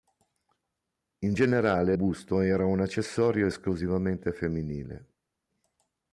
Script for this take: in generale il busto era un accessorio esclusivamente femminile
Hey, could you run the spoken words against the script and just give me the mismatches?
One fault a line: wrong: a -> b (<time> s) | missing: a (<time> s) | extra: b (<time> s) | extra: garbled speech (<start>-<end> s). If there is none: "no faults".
missing: il (1.9 s)